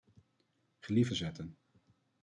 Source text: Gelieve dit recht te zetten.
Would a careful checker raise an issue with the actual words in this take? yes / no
yes